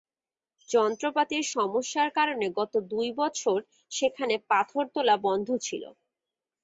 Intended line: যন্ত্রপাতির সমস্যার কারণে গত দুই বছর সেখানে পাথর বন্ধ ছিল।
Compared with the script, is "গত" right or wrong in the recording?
right